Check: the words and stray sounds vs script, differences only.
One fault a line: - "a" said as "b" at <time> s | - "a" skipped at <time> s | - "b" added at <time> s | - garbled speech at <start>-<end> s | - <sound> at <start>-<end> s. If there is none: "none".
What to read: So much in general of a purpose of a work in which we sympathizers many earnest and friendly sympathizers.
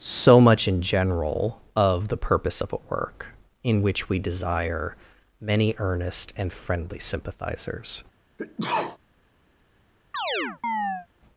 - "a" said as "the" at 2.1 s
- "sympathizers" said as "desire" at 4.2 s
- sneeze at 8.4-9.0 s
- chirp at 10.1-11.1 s